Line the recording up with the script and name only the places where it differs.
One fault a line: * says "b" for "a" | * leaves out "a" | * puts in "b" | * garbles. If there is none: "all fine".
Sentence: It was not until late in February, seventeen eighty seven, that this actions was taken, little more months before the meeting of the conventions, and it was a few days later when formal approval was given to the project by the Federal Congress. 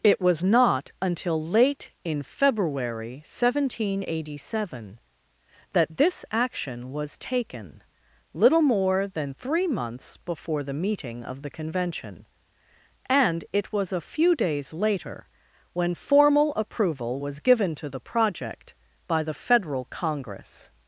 * says "action" for "actions"
* puts in "than three"
* says "convention" for "conventions"